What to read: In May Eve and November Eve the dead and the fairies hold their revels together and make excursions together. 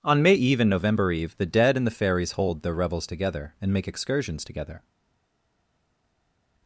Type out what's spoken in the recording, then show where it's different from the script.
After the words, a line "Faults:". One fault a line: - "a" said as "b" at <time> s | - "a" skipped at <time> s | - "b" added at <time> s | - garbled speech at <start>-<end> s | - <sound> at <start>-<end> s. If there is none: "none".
On May Eve and November Eve the dead and the fairies hold their revels together and make excursions together.
Faults:
- "In" said as "On" at 0.0 s